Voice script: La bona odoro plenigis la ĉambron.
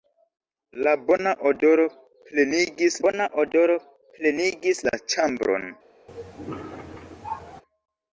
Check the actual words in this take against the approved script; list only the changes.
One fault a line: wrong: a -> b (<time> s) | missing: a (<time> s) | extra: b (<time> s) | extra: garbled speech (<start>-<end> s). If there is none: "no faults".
extra: bona odoro plenigis (3.0 s)